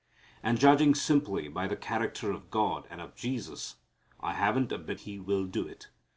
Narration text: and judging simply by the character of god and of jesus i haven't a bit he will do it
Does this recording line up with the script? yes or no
yes